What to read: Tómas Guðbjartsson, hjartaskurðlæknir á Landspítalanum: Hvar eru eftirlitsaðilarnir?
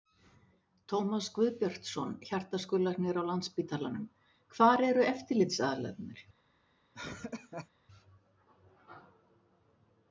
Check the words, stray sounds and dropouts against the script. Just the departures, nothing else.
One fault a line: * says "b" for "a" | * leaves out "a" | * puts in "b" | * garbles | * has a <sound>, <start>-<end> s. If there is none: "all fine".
* has a laugh, 6.9-7.7 s